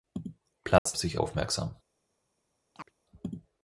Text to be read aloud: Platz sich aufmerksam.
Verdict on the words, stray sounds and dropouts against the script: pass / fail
fail